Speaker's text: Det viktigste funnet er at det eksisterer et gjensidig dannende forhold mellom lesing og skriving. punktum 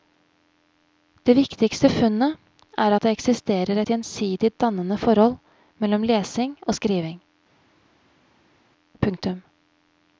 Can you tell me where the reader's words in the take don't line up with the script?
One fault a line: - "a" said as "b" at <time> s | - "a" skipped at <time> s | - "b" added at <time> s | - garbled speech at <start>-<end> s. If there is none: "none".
none